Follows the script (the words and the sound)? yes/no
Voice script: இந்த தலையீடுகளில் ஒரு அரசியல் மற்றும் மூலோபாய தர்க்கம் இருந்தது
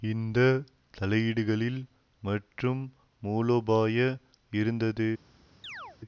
no